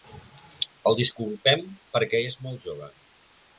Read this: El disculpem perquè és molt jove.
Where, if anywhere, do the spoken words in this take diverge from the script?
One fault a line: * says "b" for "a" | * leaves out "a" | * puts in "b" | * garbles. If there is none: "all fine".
all fine